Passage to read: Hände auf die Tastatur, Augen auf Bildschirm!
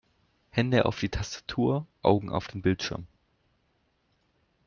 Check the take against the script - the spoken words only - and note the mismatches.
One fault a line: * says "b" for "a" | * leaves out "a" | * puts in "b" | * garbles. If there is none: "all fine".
* puts in "den"